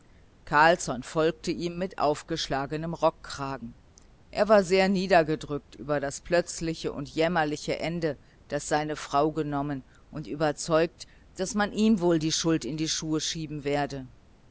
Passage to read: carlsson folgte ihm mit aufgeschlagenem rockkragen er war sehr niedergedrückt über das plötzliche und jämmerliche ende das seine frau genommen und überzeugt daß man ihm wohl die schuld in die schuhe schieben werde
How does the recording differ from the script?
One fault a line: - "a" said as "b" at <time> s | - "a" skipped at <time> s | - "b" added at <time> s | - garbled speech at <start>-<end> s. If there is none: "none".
none